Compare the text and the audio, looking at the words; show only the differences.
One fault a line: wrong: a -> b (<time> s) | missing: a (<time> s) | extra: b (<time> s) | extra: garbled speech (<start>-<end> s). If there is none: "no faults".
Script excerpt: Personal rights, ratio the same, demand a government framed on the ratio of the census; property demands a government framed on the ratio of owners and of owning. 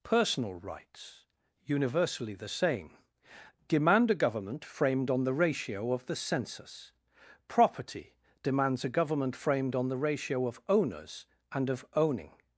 wrong: ratio -> universally (1.6 s)